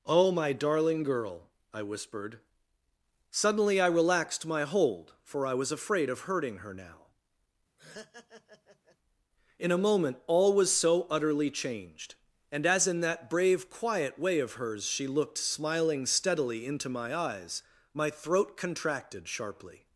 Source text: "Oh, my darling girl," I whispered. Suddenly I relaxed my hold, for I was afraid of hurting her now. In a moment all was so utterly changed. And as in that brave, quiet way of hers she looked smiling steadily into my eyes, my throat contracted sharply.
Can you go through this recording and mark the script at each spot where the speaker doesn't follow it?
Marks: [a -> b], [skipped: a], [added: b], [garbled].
"Oh, my darling girl," I whispered. Suddenly I relaxed my hold, for I was afraid of hurting her now. In a moment all was so utterly changed. And as in that brave, quiet way of hers she looked smiling steadily into my eyes, my throat contracted sharply.